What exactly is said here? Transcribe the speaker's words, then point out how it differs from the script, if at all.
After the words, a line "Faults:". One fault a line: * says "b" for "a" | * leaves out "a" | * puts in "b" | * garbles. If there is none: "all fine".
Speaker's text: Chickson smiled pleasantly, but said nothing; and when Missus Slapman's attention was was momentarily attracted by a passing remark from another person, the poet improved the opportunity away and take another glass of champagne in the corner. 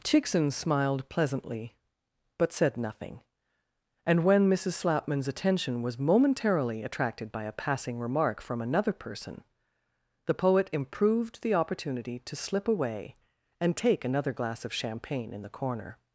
Chickson smiled pleasantly, but said nothing; and when Missus Slapman's attention was momentarily attracted by a passing remark from another person, the poet improved the opportunity to slip away and take another glass of champagne in the corner.
Faults:
* leaves out "was"
* puts in "to slip"